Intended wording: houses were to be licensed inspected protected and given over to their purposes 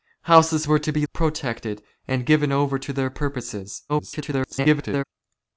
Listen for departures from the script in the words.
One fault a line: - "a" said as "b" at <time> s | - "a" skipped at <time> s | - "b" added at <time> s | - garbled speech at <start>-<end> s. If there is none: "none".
- "licensed inspected" skipped at 1.0 s
- garbled speech at 3.9-5.0 s